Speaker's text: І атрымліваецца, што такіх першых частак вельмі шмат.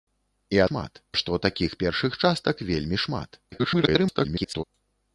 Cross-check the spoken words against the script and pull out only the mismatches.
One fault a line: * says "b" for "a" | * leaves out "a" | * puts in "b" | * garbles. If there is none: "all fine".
* says "шмат" for "атрымліваецца"
* garbles